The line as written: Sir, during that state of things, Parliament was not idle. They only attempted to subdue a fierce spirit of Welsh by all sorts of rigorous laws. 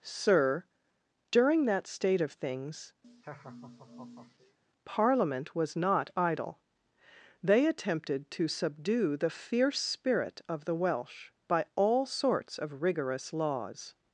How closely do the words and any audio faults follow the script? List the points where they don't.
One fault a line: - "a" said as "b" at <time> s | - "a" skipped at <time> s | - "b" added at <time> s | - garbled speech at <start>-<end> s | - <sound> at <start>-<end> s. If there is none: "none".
- laugh at 3.0-4.6 s
- "only" skipped at 7.7 s
- "a" said as "the" at 9.2 s
- "the" added at 10.6 s